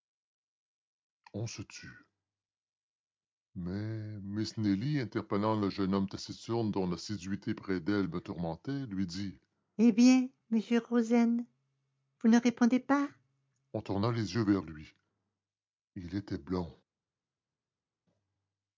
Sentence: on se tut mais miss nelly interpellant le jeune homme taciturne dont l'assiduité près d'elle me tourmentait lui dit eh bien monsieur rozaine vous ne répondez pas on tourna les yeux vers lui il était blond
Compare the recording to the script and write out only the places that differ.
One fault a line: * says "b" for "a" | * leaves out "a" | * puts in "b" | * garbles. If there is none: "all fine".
all fine